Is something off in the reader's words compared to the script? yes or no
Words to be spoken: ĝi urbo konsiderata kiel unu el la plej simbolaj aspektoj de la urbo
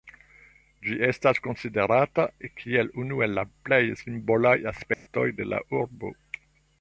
yes